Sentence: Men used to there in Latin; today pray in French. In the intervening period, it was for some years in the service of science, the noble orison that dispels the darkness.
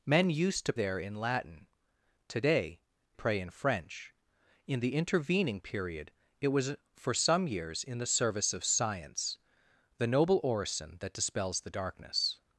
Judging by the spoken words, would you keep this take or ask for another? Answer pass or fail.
pass